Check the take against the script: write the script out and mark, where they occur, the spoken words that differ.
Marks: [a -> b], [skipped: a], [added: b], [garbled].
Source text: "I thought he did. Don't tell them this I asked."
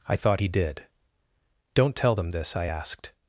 "I thought he did. Don't tell them this I asked."